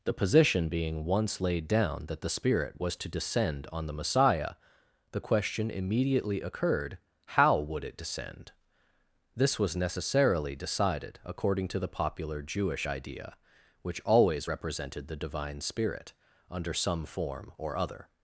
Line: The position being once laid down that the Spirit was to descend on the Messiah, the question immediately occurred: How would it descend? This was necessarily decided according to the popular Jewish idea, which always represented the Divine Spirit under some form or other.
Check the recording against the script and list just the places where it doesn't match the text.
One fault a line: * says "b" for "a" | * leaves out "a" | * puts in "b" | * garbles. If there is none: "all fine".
all fine